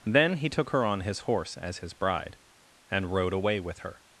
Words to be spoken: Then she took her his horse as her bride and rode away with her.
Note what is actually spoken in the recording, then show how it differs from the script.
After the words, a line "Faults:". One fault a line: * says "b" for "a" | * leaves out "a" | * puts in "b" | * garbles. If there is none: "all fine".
Then he took her on his horse as his bride and rode away with her.
Faults:
* says "he" for "she"
* puts in "on"
* says "his" for "her"